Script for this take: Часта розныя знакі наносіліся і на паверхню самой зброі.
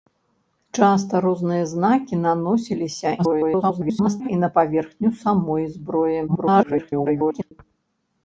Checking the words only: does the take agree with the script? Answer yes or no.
no